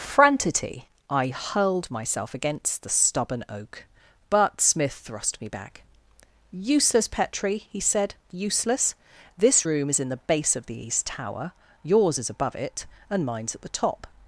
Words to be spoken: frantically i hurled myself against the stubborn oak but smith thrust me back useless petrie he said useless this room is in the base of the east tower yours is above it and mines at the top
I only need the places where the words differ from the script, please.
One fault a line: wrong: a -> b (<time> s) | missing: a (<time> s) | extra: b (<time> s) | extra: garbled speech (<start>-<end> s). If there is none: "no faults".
no faults